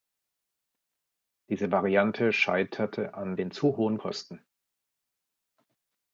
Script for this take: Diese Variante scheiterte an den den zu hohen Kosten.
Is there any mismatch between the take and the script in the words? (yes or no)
yes